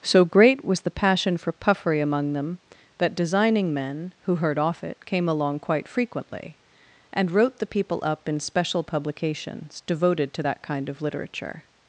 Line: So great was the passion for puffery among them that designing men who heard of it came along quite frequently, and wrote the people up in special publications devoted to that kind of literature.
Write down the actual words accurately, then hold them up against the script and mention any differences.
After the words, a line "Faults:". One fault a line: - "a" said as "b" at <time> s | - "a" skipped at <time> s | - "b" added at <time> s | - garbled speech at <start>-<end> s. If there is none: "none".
So great was the passion for puffery among them that designing men who heard off it came along quite frequently, and wrote the people up in special publications devoted to that kind of literature.
Faults:
- "of" said as "off" at 4.6 s